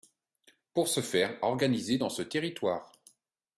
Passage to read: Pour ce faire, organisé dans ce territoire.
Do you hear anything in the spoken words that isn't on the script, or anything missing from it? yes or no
no